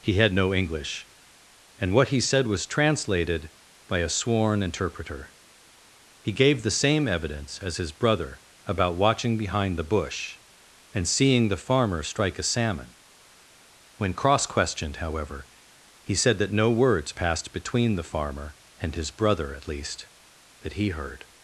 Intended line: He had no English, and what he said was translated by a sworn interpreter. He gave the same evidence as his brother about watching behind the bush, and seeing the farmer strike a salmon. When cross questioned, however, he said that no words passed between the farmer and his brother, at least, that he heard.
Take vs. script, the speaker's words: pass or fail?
pass